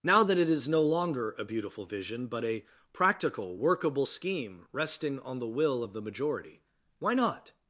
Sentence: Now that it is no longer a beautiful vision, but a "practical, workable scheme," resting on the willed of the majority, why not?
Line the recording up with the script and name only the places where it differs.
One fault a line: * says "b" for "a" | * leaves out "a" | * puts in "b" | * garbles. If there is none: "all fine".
* says "will" for "willed"